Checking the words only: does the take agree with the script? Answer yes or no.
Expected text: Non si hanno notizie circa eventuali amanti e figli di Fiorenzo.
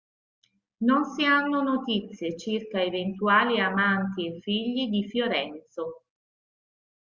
yes